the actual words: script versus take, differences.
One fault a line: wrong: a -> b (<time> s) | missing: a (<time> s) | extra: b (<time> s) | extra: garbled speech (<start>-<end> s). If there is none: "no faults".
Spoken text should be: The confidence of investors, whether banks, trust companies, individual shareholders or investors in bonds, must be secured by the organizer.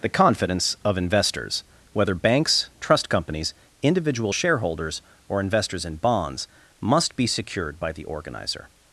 no faults